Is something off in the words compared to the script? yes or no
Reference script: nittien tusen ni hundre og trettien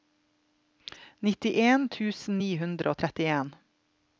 no